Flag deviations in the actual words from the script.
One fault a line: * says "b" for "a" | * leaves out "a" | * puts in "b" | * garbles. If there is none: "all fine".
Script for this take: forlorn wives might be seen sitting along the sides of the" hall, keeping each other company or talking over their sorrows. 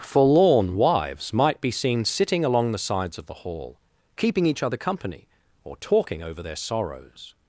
all fine